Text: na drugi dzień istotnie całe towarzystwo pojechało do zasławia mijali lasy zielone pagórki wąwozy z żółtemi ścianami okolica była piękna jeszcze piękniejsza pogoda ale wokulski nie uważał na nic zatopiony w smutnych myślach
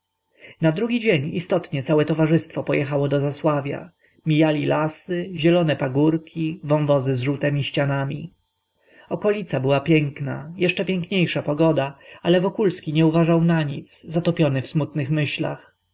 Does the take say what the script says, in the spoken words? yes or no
yes